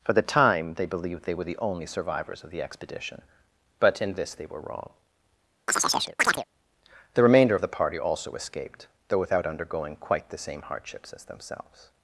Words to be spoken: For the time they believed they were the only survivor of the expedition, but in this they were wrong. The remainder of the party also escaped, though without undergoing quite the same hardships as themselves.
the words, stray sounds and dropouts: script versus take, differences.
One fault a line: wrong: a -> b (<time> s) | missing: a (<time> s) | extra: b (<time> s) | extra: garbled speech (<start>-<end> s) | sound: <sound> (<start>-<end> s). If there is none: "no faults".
wrong: survivor -> survivors (1.8 s)
sound: chirp (5.7-6.4 s)